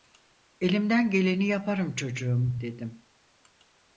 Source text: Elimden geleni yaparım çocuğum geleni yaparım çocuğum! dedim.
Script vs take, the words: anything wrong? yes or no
yes